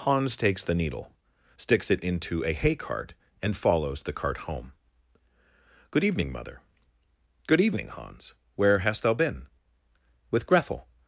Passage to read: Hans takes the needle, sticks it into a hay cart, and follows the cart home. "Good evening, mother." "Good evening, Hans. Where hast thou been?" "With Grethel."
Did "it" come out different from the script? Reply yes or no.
no